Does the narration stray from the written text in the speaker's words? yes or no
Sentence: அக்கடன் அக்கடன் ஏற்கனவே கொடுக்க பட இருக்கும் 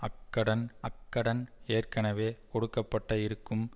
no